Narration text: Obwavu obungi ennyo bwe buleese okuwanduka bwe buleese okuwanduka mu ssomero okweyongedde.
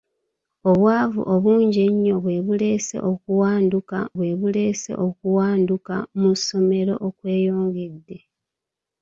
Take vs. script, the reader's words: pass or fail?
pass